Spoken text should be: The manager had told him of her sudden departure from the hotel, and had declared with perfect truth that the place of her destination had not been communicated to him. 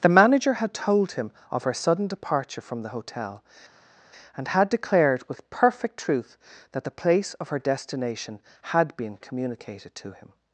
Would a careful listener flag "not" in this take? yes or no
yes